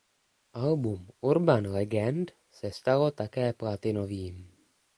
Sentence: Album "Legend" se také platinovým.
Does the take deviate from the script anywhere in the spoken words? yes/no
yes